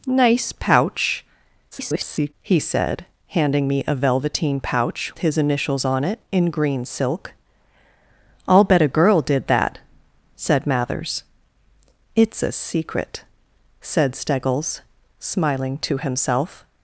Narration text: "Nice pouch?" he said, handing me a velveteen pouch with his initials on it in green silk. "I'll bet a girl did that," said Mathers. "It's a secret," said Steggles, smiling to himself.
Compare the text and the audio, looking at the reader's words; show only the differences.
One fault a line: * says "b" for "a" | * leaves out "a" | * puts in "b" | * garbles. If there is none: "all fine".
* garbles
* leaves out "with"